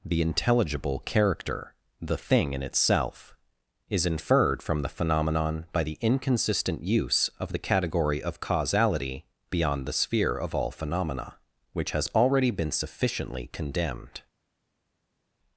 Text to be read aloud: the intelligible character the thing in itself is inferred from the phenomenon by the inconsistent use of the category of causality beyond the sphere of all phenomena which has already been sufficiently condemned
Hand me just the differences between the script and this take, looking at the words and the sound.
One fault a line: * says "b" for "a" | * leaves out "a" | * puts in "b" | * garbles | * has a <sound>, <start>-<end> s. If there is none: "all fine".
all fine